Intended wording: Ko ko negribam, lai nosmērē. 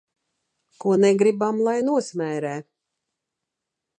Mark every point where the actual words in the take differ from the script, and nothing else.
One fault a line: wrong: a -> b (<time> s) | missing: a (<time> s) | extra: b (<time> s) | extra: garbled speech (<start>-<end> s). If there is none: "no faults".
missing: ko (0.9 s)